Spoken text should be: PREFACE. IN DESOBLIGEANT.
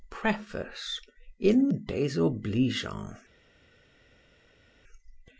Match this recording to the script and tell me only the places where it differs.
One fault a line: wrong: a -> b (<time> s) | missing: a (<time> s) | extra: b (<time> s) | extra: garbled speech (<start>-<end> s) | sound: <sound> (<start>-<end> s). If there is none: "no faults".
no faults